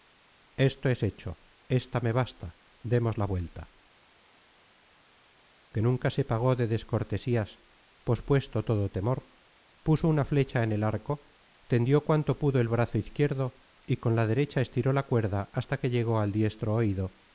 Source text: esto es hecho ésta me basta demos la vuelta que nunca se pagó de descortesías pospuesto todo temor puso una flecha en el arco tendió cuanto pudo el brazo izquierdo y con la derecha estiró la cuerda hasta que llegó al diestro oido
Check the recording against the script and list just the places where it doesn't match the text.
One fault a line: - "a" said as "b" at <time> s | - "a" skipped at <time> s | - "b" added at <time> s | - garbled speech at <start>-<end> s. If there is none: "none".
none